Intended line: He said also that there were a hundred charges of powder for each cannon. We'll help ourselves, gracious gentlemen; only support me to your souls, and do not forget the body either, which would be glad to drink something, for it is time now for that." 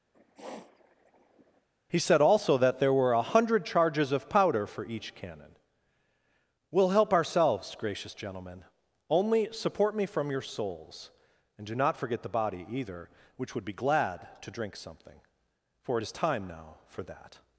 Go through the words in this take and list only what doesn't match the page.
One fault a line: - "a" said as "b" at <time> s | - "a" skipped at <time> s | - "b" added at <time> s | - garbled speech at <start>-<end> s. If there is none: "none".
- "to" said as "from" at 10.0 s